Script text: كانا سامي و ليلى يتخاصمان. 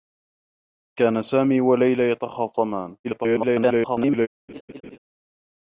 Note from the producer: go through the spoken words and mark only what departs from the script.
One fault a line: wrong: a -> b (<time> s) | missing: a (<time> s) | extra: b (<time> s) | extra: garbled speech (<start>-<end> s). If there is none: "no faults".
extra: garbled speech (3.0-4.3 s)